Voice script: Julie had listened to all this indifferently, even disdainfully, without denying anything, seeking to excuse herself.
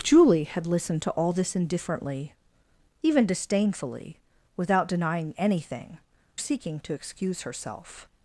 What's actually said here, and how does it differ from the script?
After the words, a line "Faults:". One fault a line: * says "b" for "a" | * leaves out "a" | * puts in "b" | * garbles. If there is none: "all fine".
Julie had listened to all this indifferently, even disdainfully, without denying anything, seeking to excuse herself.
Faults:
all fine